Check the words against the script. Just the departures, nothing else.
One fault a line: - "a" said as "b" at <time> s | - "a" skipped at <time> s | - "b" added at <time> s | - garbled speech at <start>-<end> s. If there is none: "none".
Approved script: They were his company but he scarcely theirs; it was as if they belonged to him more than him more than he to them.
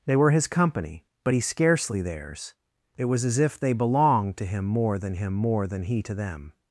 none